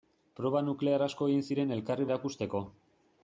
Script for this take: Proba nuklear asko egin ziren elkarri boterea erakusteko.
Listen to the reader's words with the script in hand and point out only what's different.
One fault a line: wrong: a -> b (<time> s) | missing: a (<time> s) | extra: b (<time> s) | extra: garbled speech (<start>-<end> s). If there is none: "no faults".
missing: boterea (2.1 s)